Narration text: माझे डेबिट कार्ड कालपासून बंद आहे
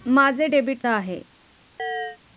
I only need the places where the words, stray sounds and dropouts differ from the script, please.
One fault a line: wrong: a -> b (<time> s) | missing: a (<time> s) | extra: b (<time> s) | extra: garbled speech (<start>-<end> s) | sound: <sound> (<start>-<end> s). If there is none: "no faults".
missing: कार्ड कालपासून बंद (0.8 s)
sound: chirp (1.8-2.2 s)